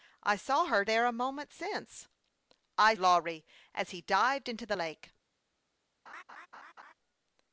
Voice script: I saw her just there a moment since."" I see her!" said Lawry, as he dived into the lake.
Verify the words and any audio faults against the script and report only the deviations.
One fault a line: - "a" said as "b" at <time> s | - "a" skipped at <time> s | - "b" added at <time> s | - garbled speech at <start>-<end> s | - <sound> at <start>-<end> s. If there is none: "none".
- "just" skipped at 0.8 s
- "see her said" skipped at 2.9 s
- laugh at 6.1-6.9 s